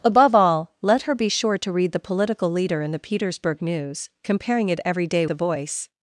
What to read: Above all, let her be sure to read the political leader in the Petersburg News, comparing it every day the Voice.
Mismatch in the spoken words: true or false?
false